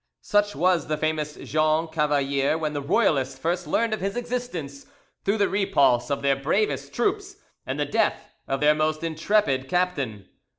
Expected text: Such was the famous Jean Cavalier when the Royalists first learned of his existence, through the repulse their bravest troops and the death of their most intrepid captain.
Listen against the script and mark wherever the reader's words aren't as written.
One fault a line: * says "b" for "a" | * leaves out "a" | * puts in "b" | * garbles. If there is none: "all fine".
* puts in "of"